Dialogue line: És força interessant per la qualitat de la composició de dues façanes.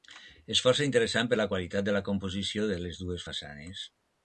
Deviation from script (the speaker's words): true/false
true